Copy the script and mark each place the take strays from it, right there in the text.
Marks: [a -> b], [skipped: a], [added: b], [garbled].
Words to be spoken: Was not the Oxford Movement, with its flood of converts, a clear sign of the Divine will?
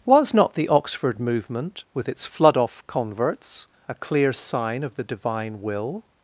Was not the Oxford Movement, with its flood [of -> off] converts, a clear sign of the Divine will?